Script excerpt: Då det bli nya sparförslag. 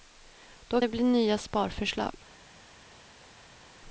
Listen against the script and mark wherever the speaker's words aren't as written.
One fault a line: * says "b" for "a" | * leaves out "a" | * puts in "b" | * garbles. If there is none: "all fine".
all fine